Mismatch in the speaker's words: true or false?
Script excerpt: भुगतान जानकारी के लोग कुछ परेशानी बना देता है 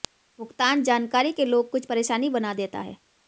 false